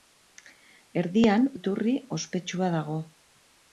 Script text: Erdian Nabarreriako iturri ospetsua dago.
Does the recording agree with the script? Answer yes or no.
no